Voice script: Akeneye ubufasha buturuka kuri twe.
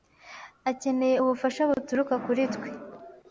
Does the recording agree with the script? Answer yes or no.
yes